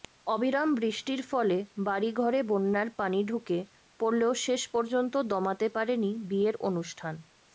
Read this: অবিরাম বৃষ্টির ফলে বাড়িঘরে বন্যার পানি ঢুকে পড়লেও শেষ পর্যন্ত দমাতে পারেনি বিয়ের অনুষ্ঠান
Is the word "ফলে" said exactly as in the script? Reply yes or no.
yes